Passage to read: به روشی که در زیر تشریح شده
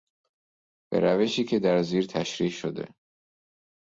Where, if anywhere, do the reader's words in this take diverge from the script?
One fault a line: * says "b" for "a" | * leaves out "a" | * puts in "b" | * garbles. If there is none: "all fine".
all fine